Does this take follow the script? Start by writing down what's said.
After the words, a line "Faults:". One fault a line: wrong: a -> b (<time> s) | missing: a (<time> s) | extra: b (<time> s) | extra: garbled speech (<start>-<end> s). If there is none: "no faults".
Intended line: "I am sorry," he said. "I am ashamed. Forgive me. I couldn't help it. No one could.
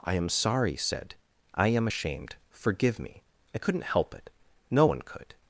"I am sorry," said. "I am ashamed. Forgive me. I couldn't help it. No one could.
Faults:
missing: he (0.8 s)